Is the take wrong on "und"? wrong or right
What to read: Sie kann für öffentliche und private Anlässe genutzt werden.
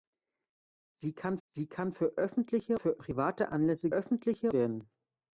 wrong